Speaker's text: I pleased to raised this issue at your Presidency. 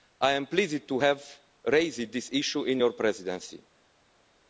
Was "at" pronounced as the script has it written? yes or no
no